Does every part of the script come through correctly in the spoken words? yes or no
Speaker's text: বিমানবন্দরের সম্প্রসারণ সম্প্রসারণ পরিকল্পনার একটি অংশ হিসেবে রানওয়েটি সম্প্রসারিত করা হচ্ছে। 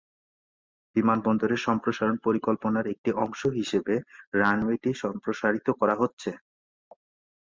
no